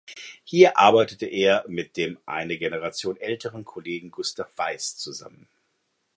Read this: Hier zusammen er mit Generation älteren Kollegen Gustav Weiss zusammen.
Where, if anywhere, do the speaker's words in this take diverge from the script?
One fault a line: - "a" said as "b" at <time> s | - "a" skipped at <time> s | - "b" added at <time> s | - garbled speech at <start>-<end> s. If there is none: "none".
- "zusammen" said as "arbeitete" at 0.8 s
- "dem eine" added at 1.9 s